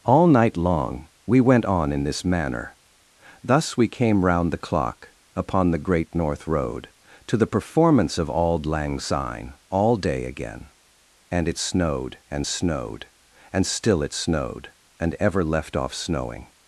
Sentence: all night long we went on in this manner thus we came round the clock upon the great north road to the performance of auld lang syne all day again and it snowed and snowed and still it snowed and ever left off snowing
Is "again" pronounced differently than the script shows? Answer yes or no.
no